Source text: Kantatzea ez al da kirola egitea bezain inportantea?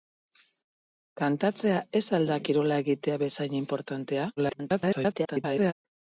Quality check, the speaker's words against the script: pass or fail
fail